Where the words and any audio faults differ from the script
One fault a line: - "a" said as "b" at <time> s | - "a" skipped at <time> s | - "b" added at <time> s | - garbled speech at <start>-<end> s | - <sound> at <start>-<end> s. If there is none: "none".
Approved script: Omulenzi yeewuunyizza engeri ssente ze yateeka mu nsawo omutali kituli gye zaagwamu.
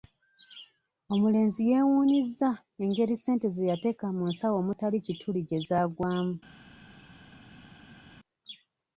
none